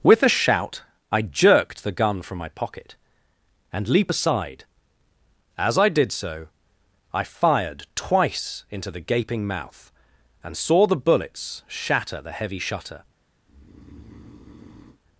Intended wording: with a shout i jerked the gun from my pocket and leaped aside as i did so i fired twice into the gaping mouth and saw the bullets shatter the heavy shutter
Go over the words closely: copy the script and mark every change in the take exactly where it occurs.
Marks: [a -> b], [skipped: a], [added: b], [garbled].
with a shout i jerked the gun from my pocket and [leaped -> leap] aside as i did so i fired twice into the gaping mouth and saw the bullets shatter the heavy shutter